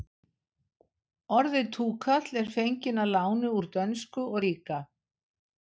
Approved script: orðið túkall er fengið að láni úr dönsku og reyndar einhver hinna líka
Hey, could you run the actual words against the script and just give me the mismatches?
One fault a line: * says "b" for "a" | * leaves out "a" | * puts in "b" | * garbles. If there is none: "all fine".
* leaves out "reyndar einhver hinna"